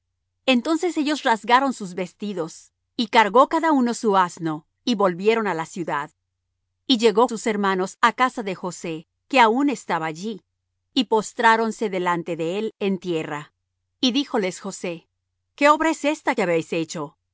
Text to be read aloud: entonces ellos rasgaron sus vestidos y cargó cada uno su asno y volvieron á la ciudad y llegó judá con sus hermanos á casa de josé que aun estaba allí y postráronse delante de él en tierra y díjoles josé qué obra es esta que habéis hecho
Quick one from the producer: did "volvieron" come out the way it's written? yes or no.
yes